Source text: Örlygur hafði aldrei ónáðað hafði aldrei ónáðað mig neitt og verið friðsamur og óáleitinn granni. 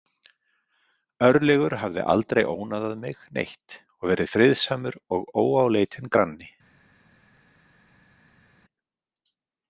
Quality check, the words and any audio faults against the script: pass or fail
fail